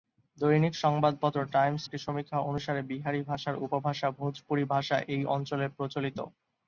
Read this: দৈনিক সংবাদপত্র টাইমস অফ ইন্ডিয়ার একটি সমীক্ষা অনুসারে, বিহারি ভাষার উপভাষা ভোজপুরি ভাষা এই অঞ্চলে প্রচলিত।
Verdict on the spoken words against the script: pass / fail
fail